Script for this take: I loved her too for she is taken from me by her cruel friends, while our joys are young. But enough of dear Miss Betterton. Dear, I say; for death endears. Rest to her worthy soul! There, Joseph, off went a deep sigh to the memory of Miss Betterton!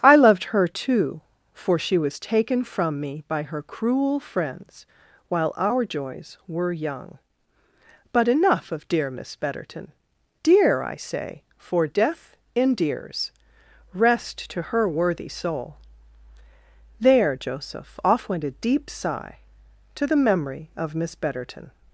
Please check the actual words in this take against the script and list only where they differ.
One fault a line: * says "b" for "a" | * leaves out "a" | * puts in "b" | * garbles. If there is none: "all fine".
* says "was" for "is"
* says "were" for "are"